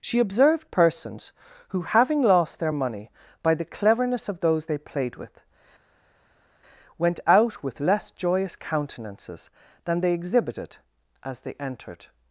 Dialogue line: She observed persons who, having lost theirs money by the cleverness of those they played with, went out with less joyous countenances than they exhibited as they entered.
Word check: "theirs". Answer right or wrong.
wrong